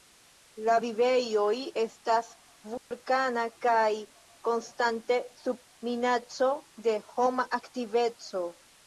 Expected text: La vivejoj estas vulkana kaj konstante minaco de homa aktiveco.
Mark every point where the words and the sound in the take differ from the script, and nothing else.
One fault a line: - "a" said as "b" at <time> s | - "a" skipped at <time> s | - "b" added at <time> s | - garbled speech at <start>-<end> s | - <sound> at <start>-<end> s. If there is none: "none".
- dropout at 2.8-2.9 s
- "sub" added at 5.4 s